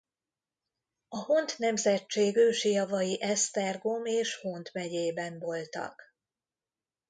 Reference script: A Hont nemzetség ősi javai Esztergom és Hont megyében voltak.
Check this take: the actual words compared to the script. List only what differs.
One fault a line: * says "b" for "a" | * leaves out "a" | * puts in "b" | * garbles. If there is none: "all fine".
all fine